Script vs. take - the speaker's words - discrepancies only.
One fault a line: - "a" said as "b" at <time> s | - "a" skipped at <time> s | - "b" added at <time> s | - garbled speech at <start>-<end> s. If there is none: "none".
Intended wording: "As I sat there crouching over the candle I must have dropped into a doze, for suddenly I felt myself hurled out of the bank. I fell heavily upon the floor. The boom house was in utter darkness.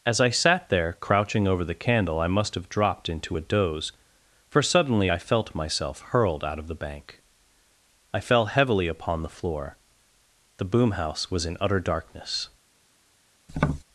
none